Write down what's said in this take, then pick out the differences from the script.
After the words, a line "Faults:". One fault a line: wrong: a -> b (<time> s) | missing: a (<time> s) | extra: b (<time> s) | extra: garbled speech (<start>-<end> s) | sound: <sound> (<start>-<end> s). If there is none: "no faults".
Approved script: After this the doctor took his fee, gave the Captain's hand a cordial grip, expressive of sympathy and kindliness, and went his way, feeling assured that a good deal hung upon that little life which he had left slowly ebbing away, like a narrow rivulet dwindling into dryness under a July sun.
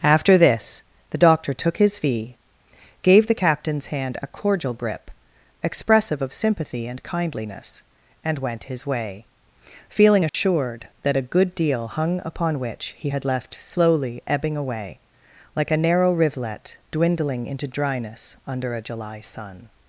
After this the doctor took his fee, gave the Captain's hand a cordial grip, expressive of sympathy and kindliness, and went his way, feeling assured that a good deal hung upon which he had left slowly ebbing away, like a narrow rivulet dwindling into dryness under a July sun.
Faults:
sound: dropout (10.3-10.3 s)
missing: that little life (12.6 s)